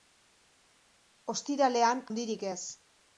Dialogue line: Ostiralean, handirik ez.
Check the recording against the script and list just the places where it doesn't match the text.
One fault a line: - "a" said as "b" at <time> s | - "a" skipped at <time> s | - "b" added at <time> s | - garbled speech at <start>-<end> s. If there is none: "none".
none